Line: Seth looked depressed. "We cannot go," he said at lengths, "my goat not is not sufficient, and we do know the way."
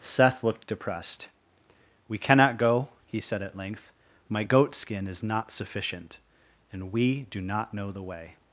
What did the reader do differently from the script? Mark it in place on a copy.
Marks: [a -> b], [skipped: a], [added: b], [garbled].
Seth looked depressed. "We cannot go," he said at [lengths, -> length] "my goat [not -> skin] is not sufficient, and we do [added: not] know the way."